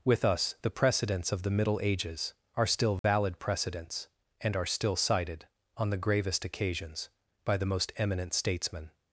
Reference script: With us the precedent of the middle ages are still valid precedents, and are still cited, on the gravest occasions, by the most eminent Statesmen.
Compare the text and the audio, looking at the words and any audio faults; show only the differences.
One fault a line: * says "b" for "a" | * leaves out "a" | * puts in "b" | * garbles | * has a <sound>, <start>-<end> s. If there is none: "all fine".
* says "precedents" for "precedent"
* has a dropout, 3.0-3.0 s